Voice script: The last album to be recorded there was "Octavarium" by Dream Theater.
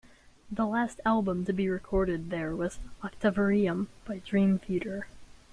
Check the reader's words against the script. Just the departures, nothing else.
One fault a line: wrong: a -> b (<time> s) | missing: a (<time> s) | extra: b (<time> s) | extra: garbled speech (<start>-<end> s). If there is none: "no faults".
no faults